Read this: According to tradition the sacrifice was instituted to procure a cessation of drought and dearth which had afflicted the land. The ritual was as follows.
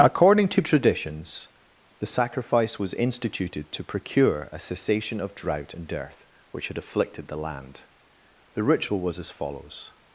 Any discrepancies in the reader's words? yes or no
yes